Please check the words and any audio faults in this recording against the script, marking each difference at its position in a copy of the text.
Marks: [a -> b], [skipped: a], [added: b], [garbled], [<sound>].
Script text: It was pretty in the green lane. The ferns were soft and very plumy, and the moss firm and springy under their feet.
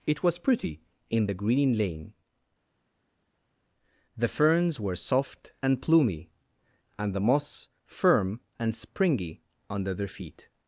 It was pretty in the green lane. The ferns were soft and [skipped: very] plumy, and the moss firm and springy under their feet.